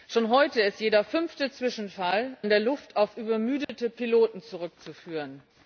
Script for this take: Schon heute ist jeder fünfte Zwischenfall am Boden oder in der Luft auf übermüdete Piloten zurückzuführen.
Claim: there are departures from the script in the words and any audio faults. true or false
true